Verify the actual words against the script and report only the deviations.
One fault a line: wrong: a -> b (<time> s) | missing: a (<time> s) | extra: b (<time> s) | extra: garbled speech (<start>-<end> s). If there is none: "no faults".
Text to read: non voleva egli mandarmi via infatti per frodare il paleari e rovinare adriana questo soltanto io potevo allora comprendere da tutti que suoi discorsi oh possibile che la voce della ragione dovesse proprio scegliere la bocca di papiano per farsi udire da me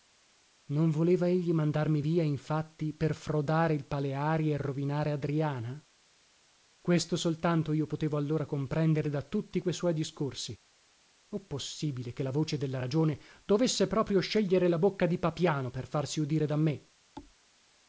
no faults